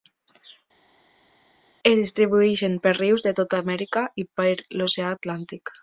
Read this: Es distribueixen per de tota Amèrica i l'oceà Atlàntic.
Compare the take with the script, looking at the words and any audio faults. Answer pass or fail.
fail